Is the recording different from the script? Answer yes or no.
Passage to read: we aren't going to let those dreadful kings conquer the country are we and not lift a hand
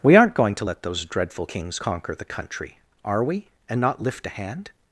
no